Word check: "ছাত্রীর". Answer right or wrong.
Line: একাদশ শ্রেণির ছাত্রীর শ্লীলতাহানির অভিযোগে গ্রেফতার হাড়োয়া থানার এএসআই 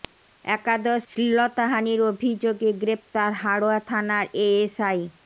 wrong